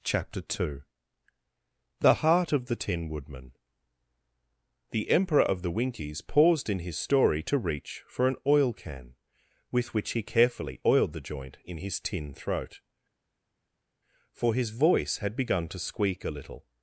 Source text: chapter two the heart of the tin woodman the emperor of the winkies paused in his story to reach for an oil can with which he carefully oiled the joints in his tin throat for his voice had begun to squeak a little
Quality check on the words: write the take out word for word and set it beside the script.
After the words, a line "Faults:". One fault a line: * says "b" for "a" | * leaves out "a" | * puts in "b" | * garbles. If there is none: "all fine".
chapter two the heart of the tin woodman the emperor of the winkies paused in his story to reach for an oil can with which he carefully oiled the joint in his tin throat for his voice had begun to squeak a little
Faults:
* says "joint" for "joints"